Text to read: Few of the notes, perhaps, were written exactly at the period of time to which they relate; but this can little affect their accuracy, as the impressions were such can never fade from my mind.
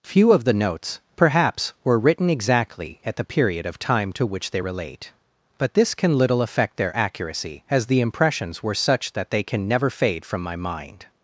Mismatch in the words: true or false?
true